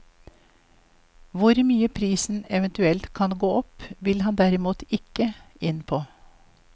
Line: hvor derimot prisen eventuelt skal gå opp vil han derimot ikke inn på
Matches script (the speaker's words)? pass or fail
fail